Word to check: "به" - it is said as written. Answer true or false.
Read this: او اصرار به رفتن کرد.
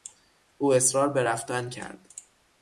true